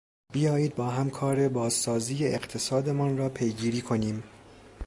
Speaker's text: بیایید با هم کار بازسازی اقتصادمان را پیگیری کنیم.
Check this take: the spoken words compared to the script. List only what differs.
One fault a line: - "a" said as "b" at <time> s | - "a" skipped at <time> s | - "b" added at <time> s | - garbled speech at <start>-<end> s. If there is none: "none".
none